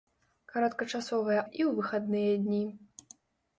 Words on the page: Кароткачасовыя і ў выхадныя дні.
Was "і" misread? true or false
false